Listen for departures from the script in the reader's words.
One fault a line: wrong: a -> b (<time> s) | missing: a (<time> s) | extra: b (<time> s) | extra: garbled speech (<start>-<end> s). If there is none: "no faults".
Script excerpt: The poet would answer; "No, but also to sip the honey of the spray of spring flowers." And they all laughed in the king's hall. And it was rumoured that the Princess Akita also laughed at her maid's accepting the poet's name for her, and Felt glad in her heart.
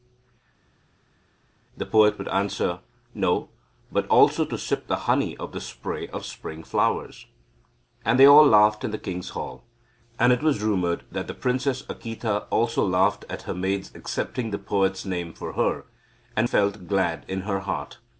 no faults